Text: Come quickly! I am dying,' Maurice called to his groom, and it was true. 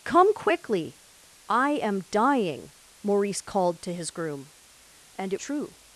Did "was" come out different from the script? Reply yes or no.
yes